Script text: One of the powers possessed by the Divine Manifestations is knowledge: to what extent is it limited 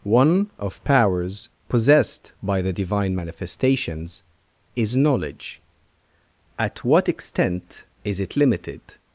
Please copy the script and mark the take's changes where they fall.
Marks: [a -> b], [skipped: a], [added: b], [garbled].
One of [skipped: the] powers possessed by the Divine Manifestations is knowledge: [to -> at] what extent is it limited